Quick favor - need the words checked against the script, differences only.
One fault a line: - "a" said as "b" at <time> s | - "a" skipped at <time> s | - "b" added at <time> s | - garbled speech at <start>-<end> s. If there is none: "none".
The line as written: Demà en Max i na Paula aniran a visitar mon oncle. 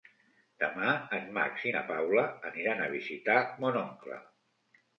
none